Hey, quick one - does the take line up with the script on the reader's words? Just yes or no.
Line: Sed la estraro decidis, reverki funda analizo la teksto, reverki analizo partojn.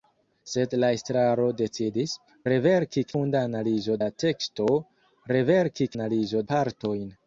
yes